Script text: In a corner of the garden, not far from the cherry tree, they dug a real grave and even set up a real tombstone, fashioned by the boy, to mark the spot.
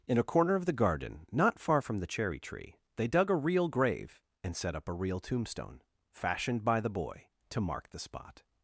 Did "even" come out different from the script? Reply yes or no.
yes